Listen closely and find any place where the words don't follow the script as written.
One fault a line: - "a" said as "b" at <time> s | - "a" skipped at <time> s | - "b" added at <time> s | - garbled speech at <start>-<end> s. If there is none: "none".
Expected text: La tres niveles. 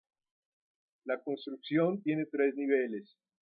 - "construcción tiene" added at 1.2 s